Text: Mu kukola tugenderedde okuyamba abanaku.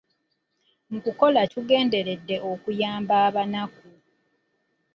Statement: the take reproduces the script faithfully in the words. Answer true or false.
true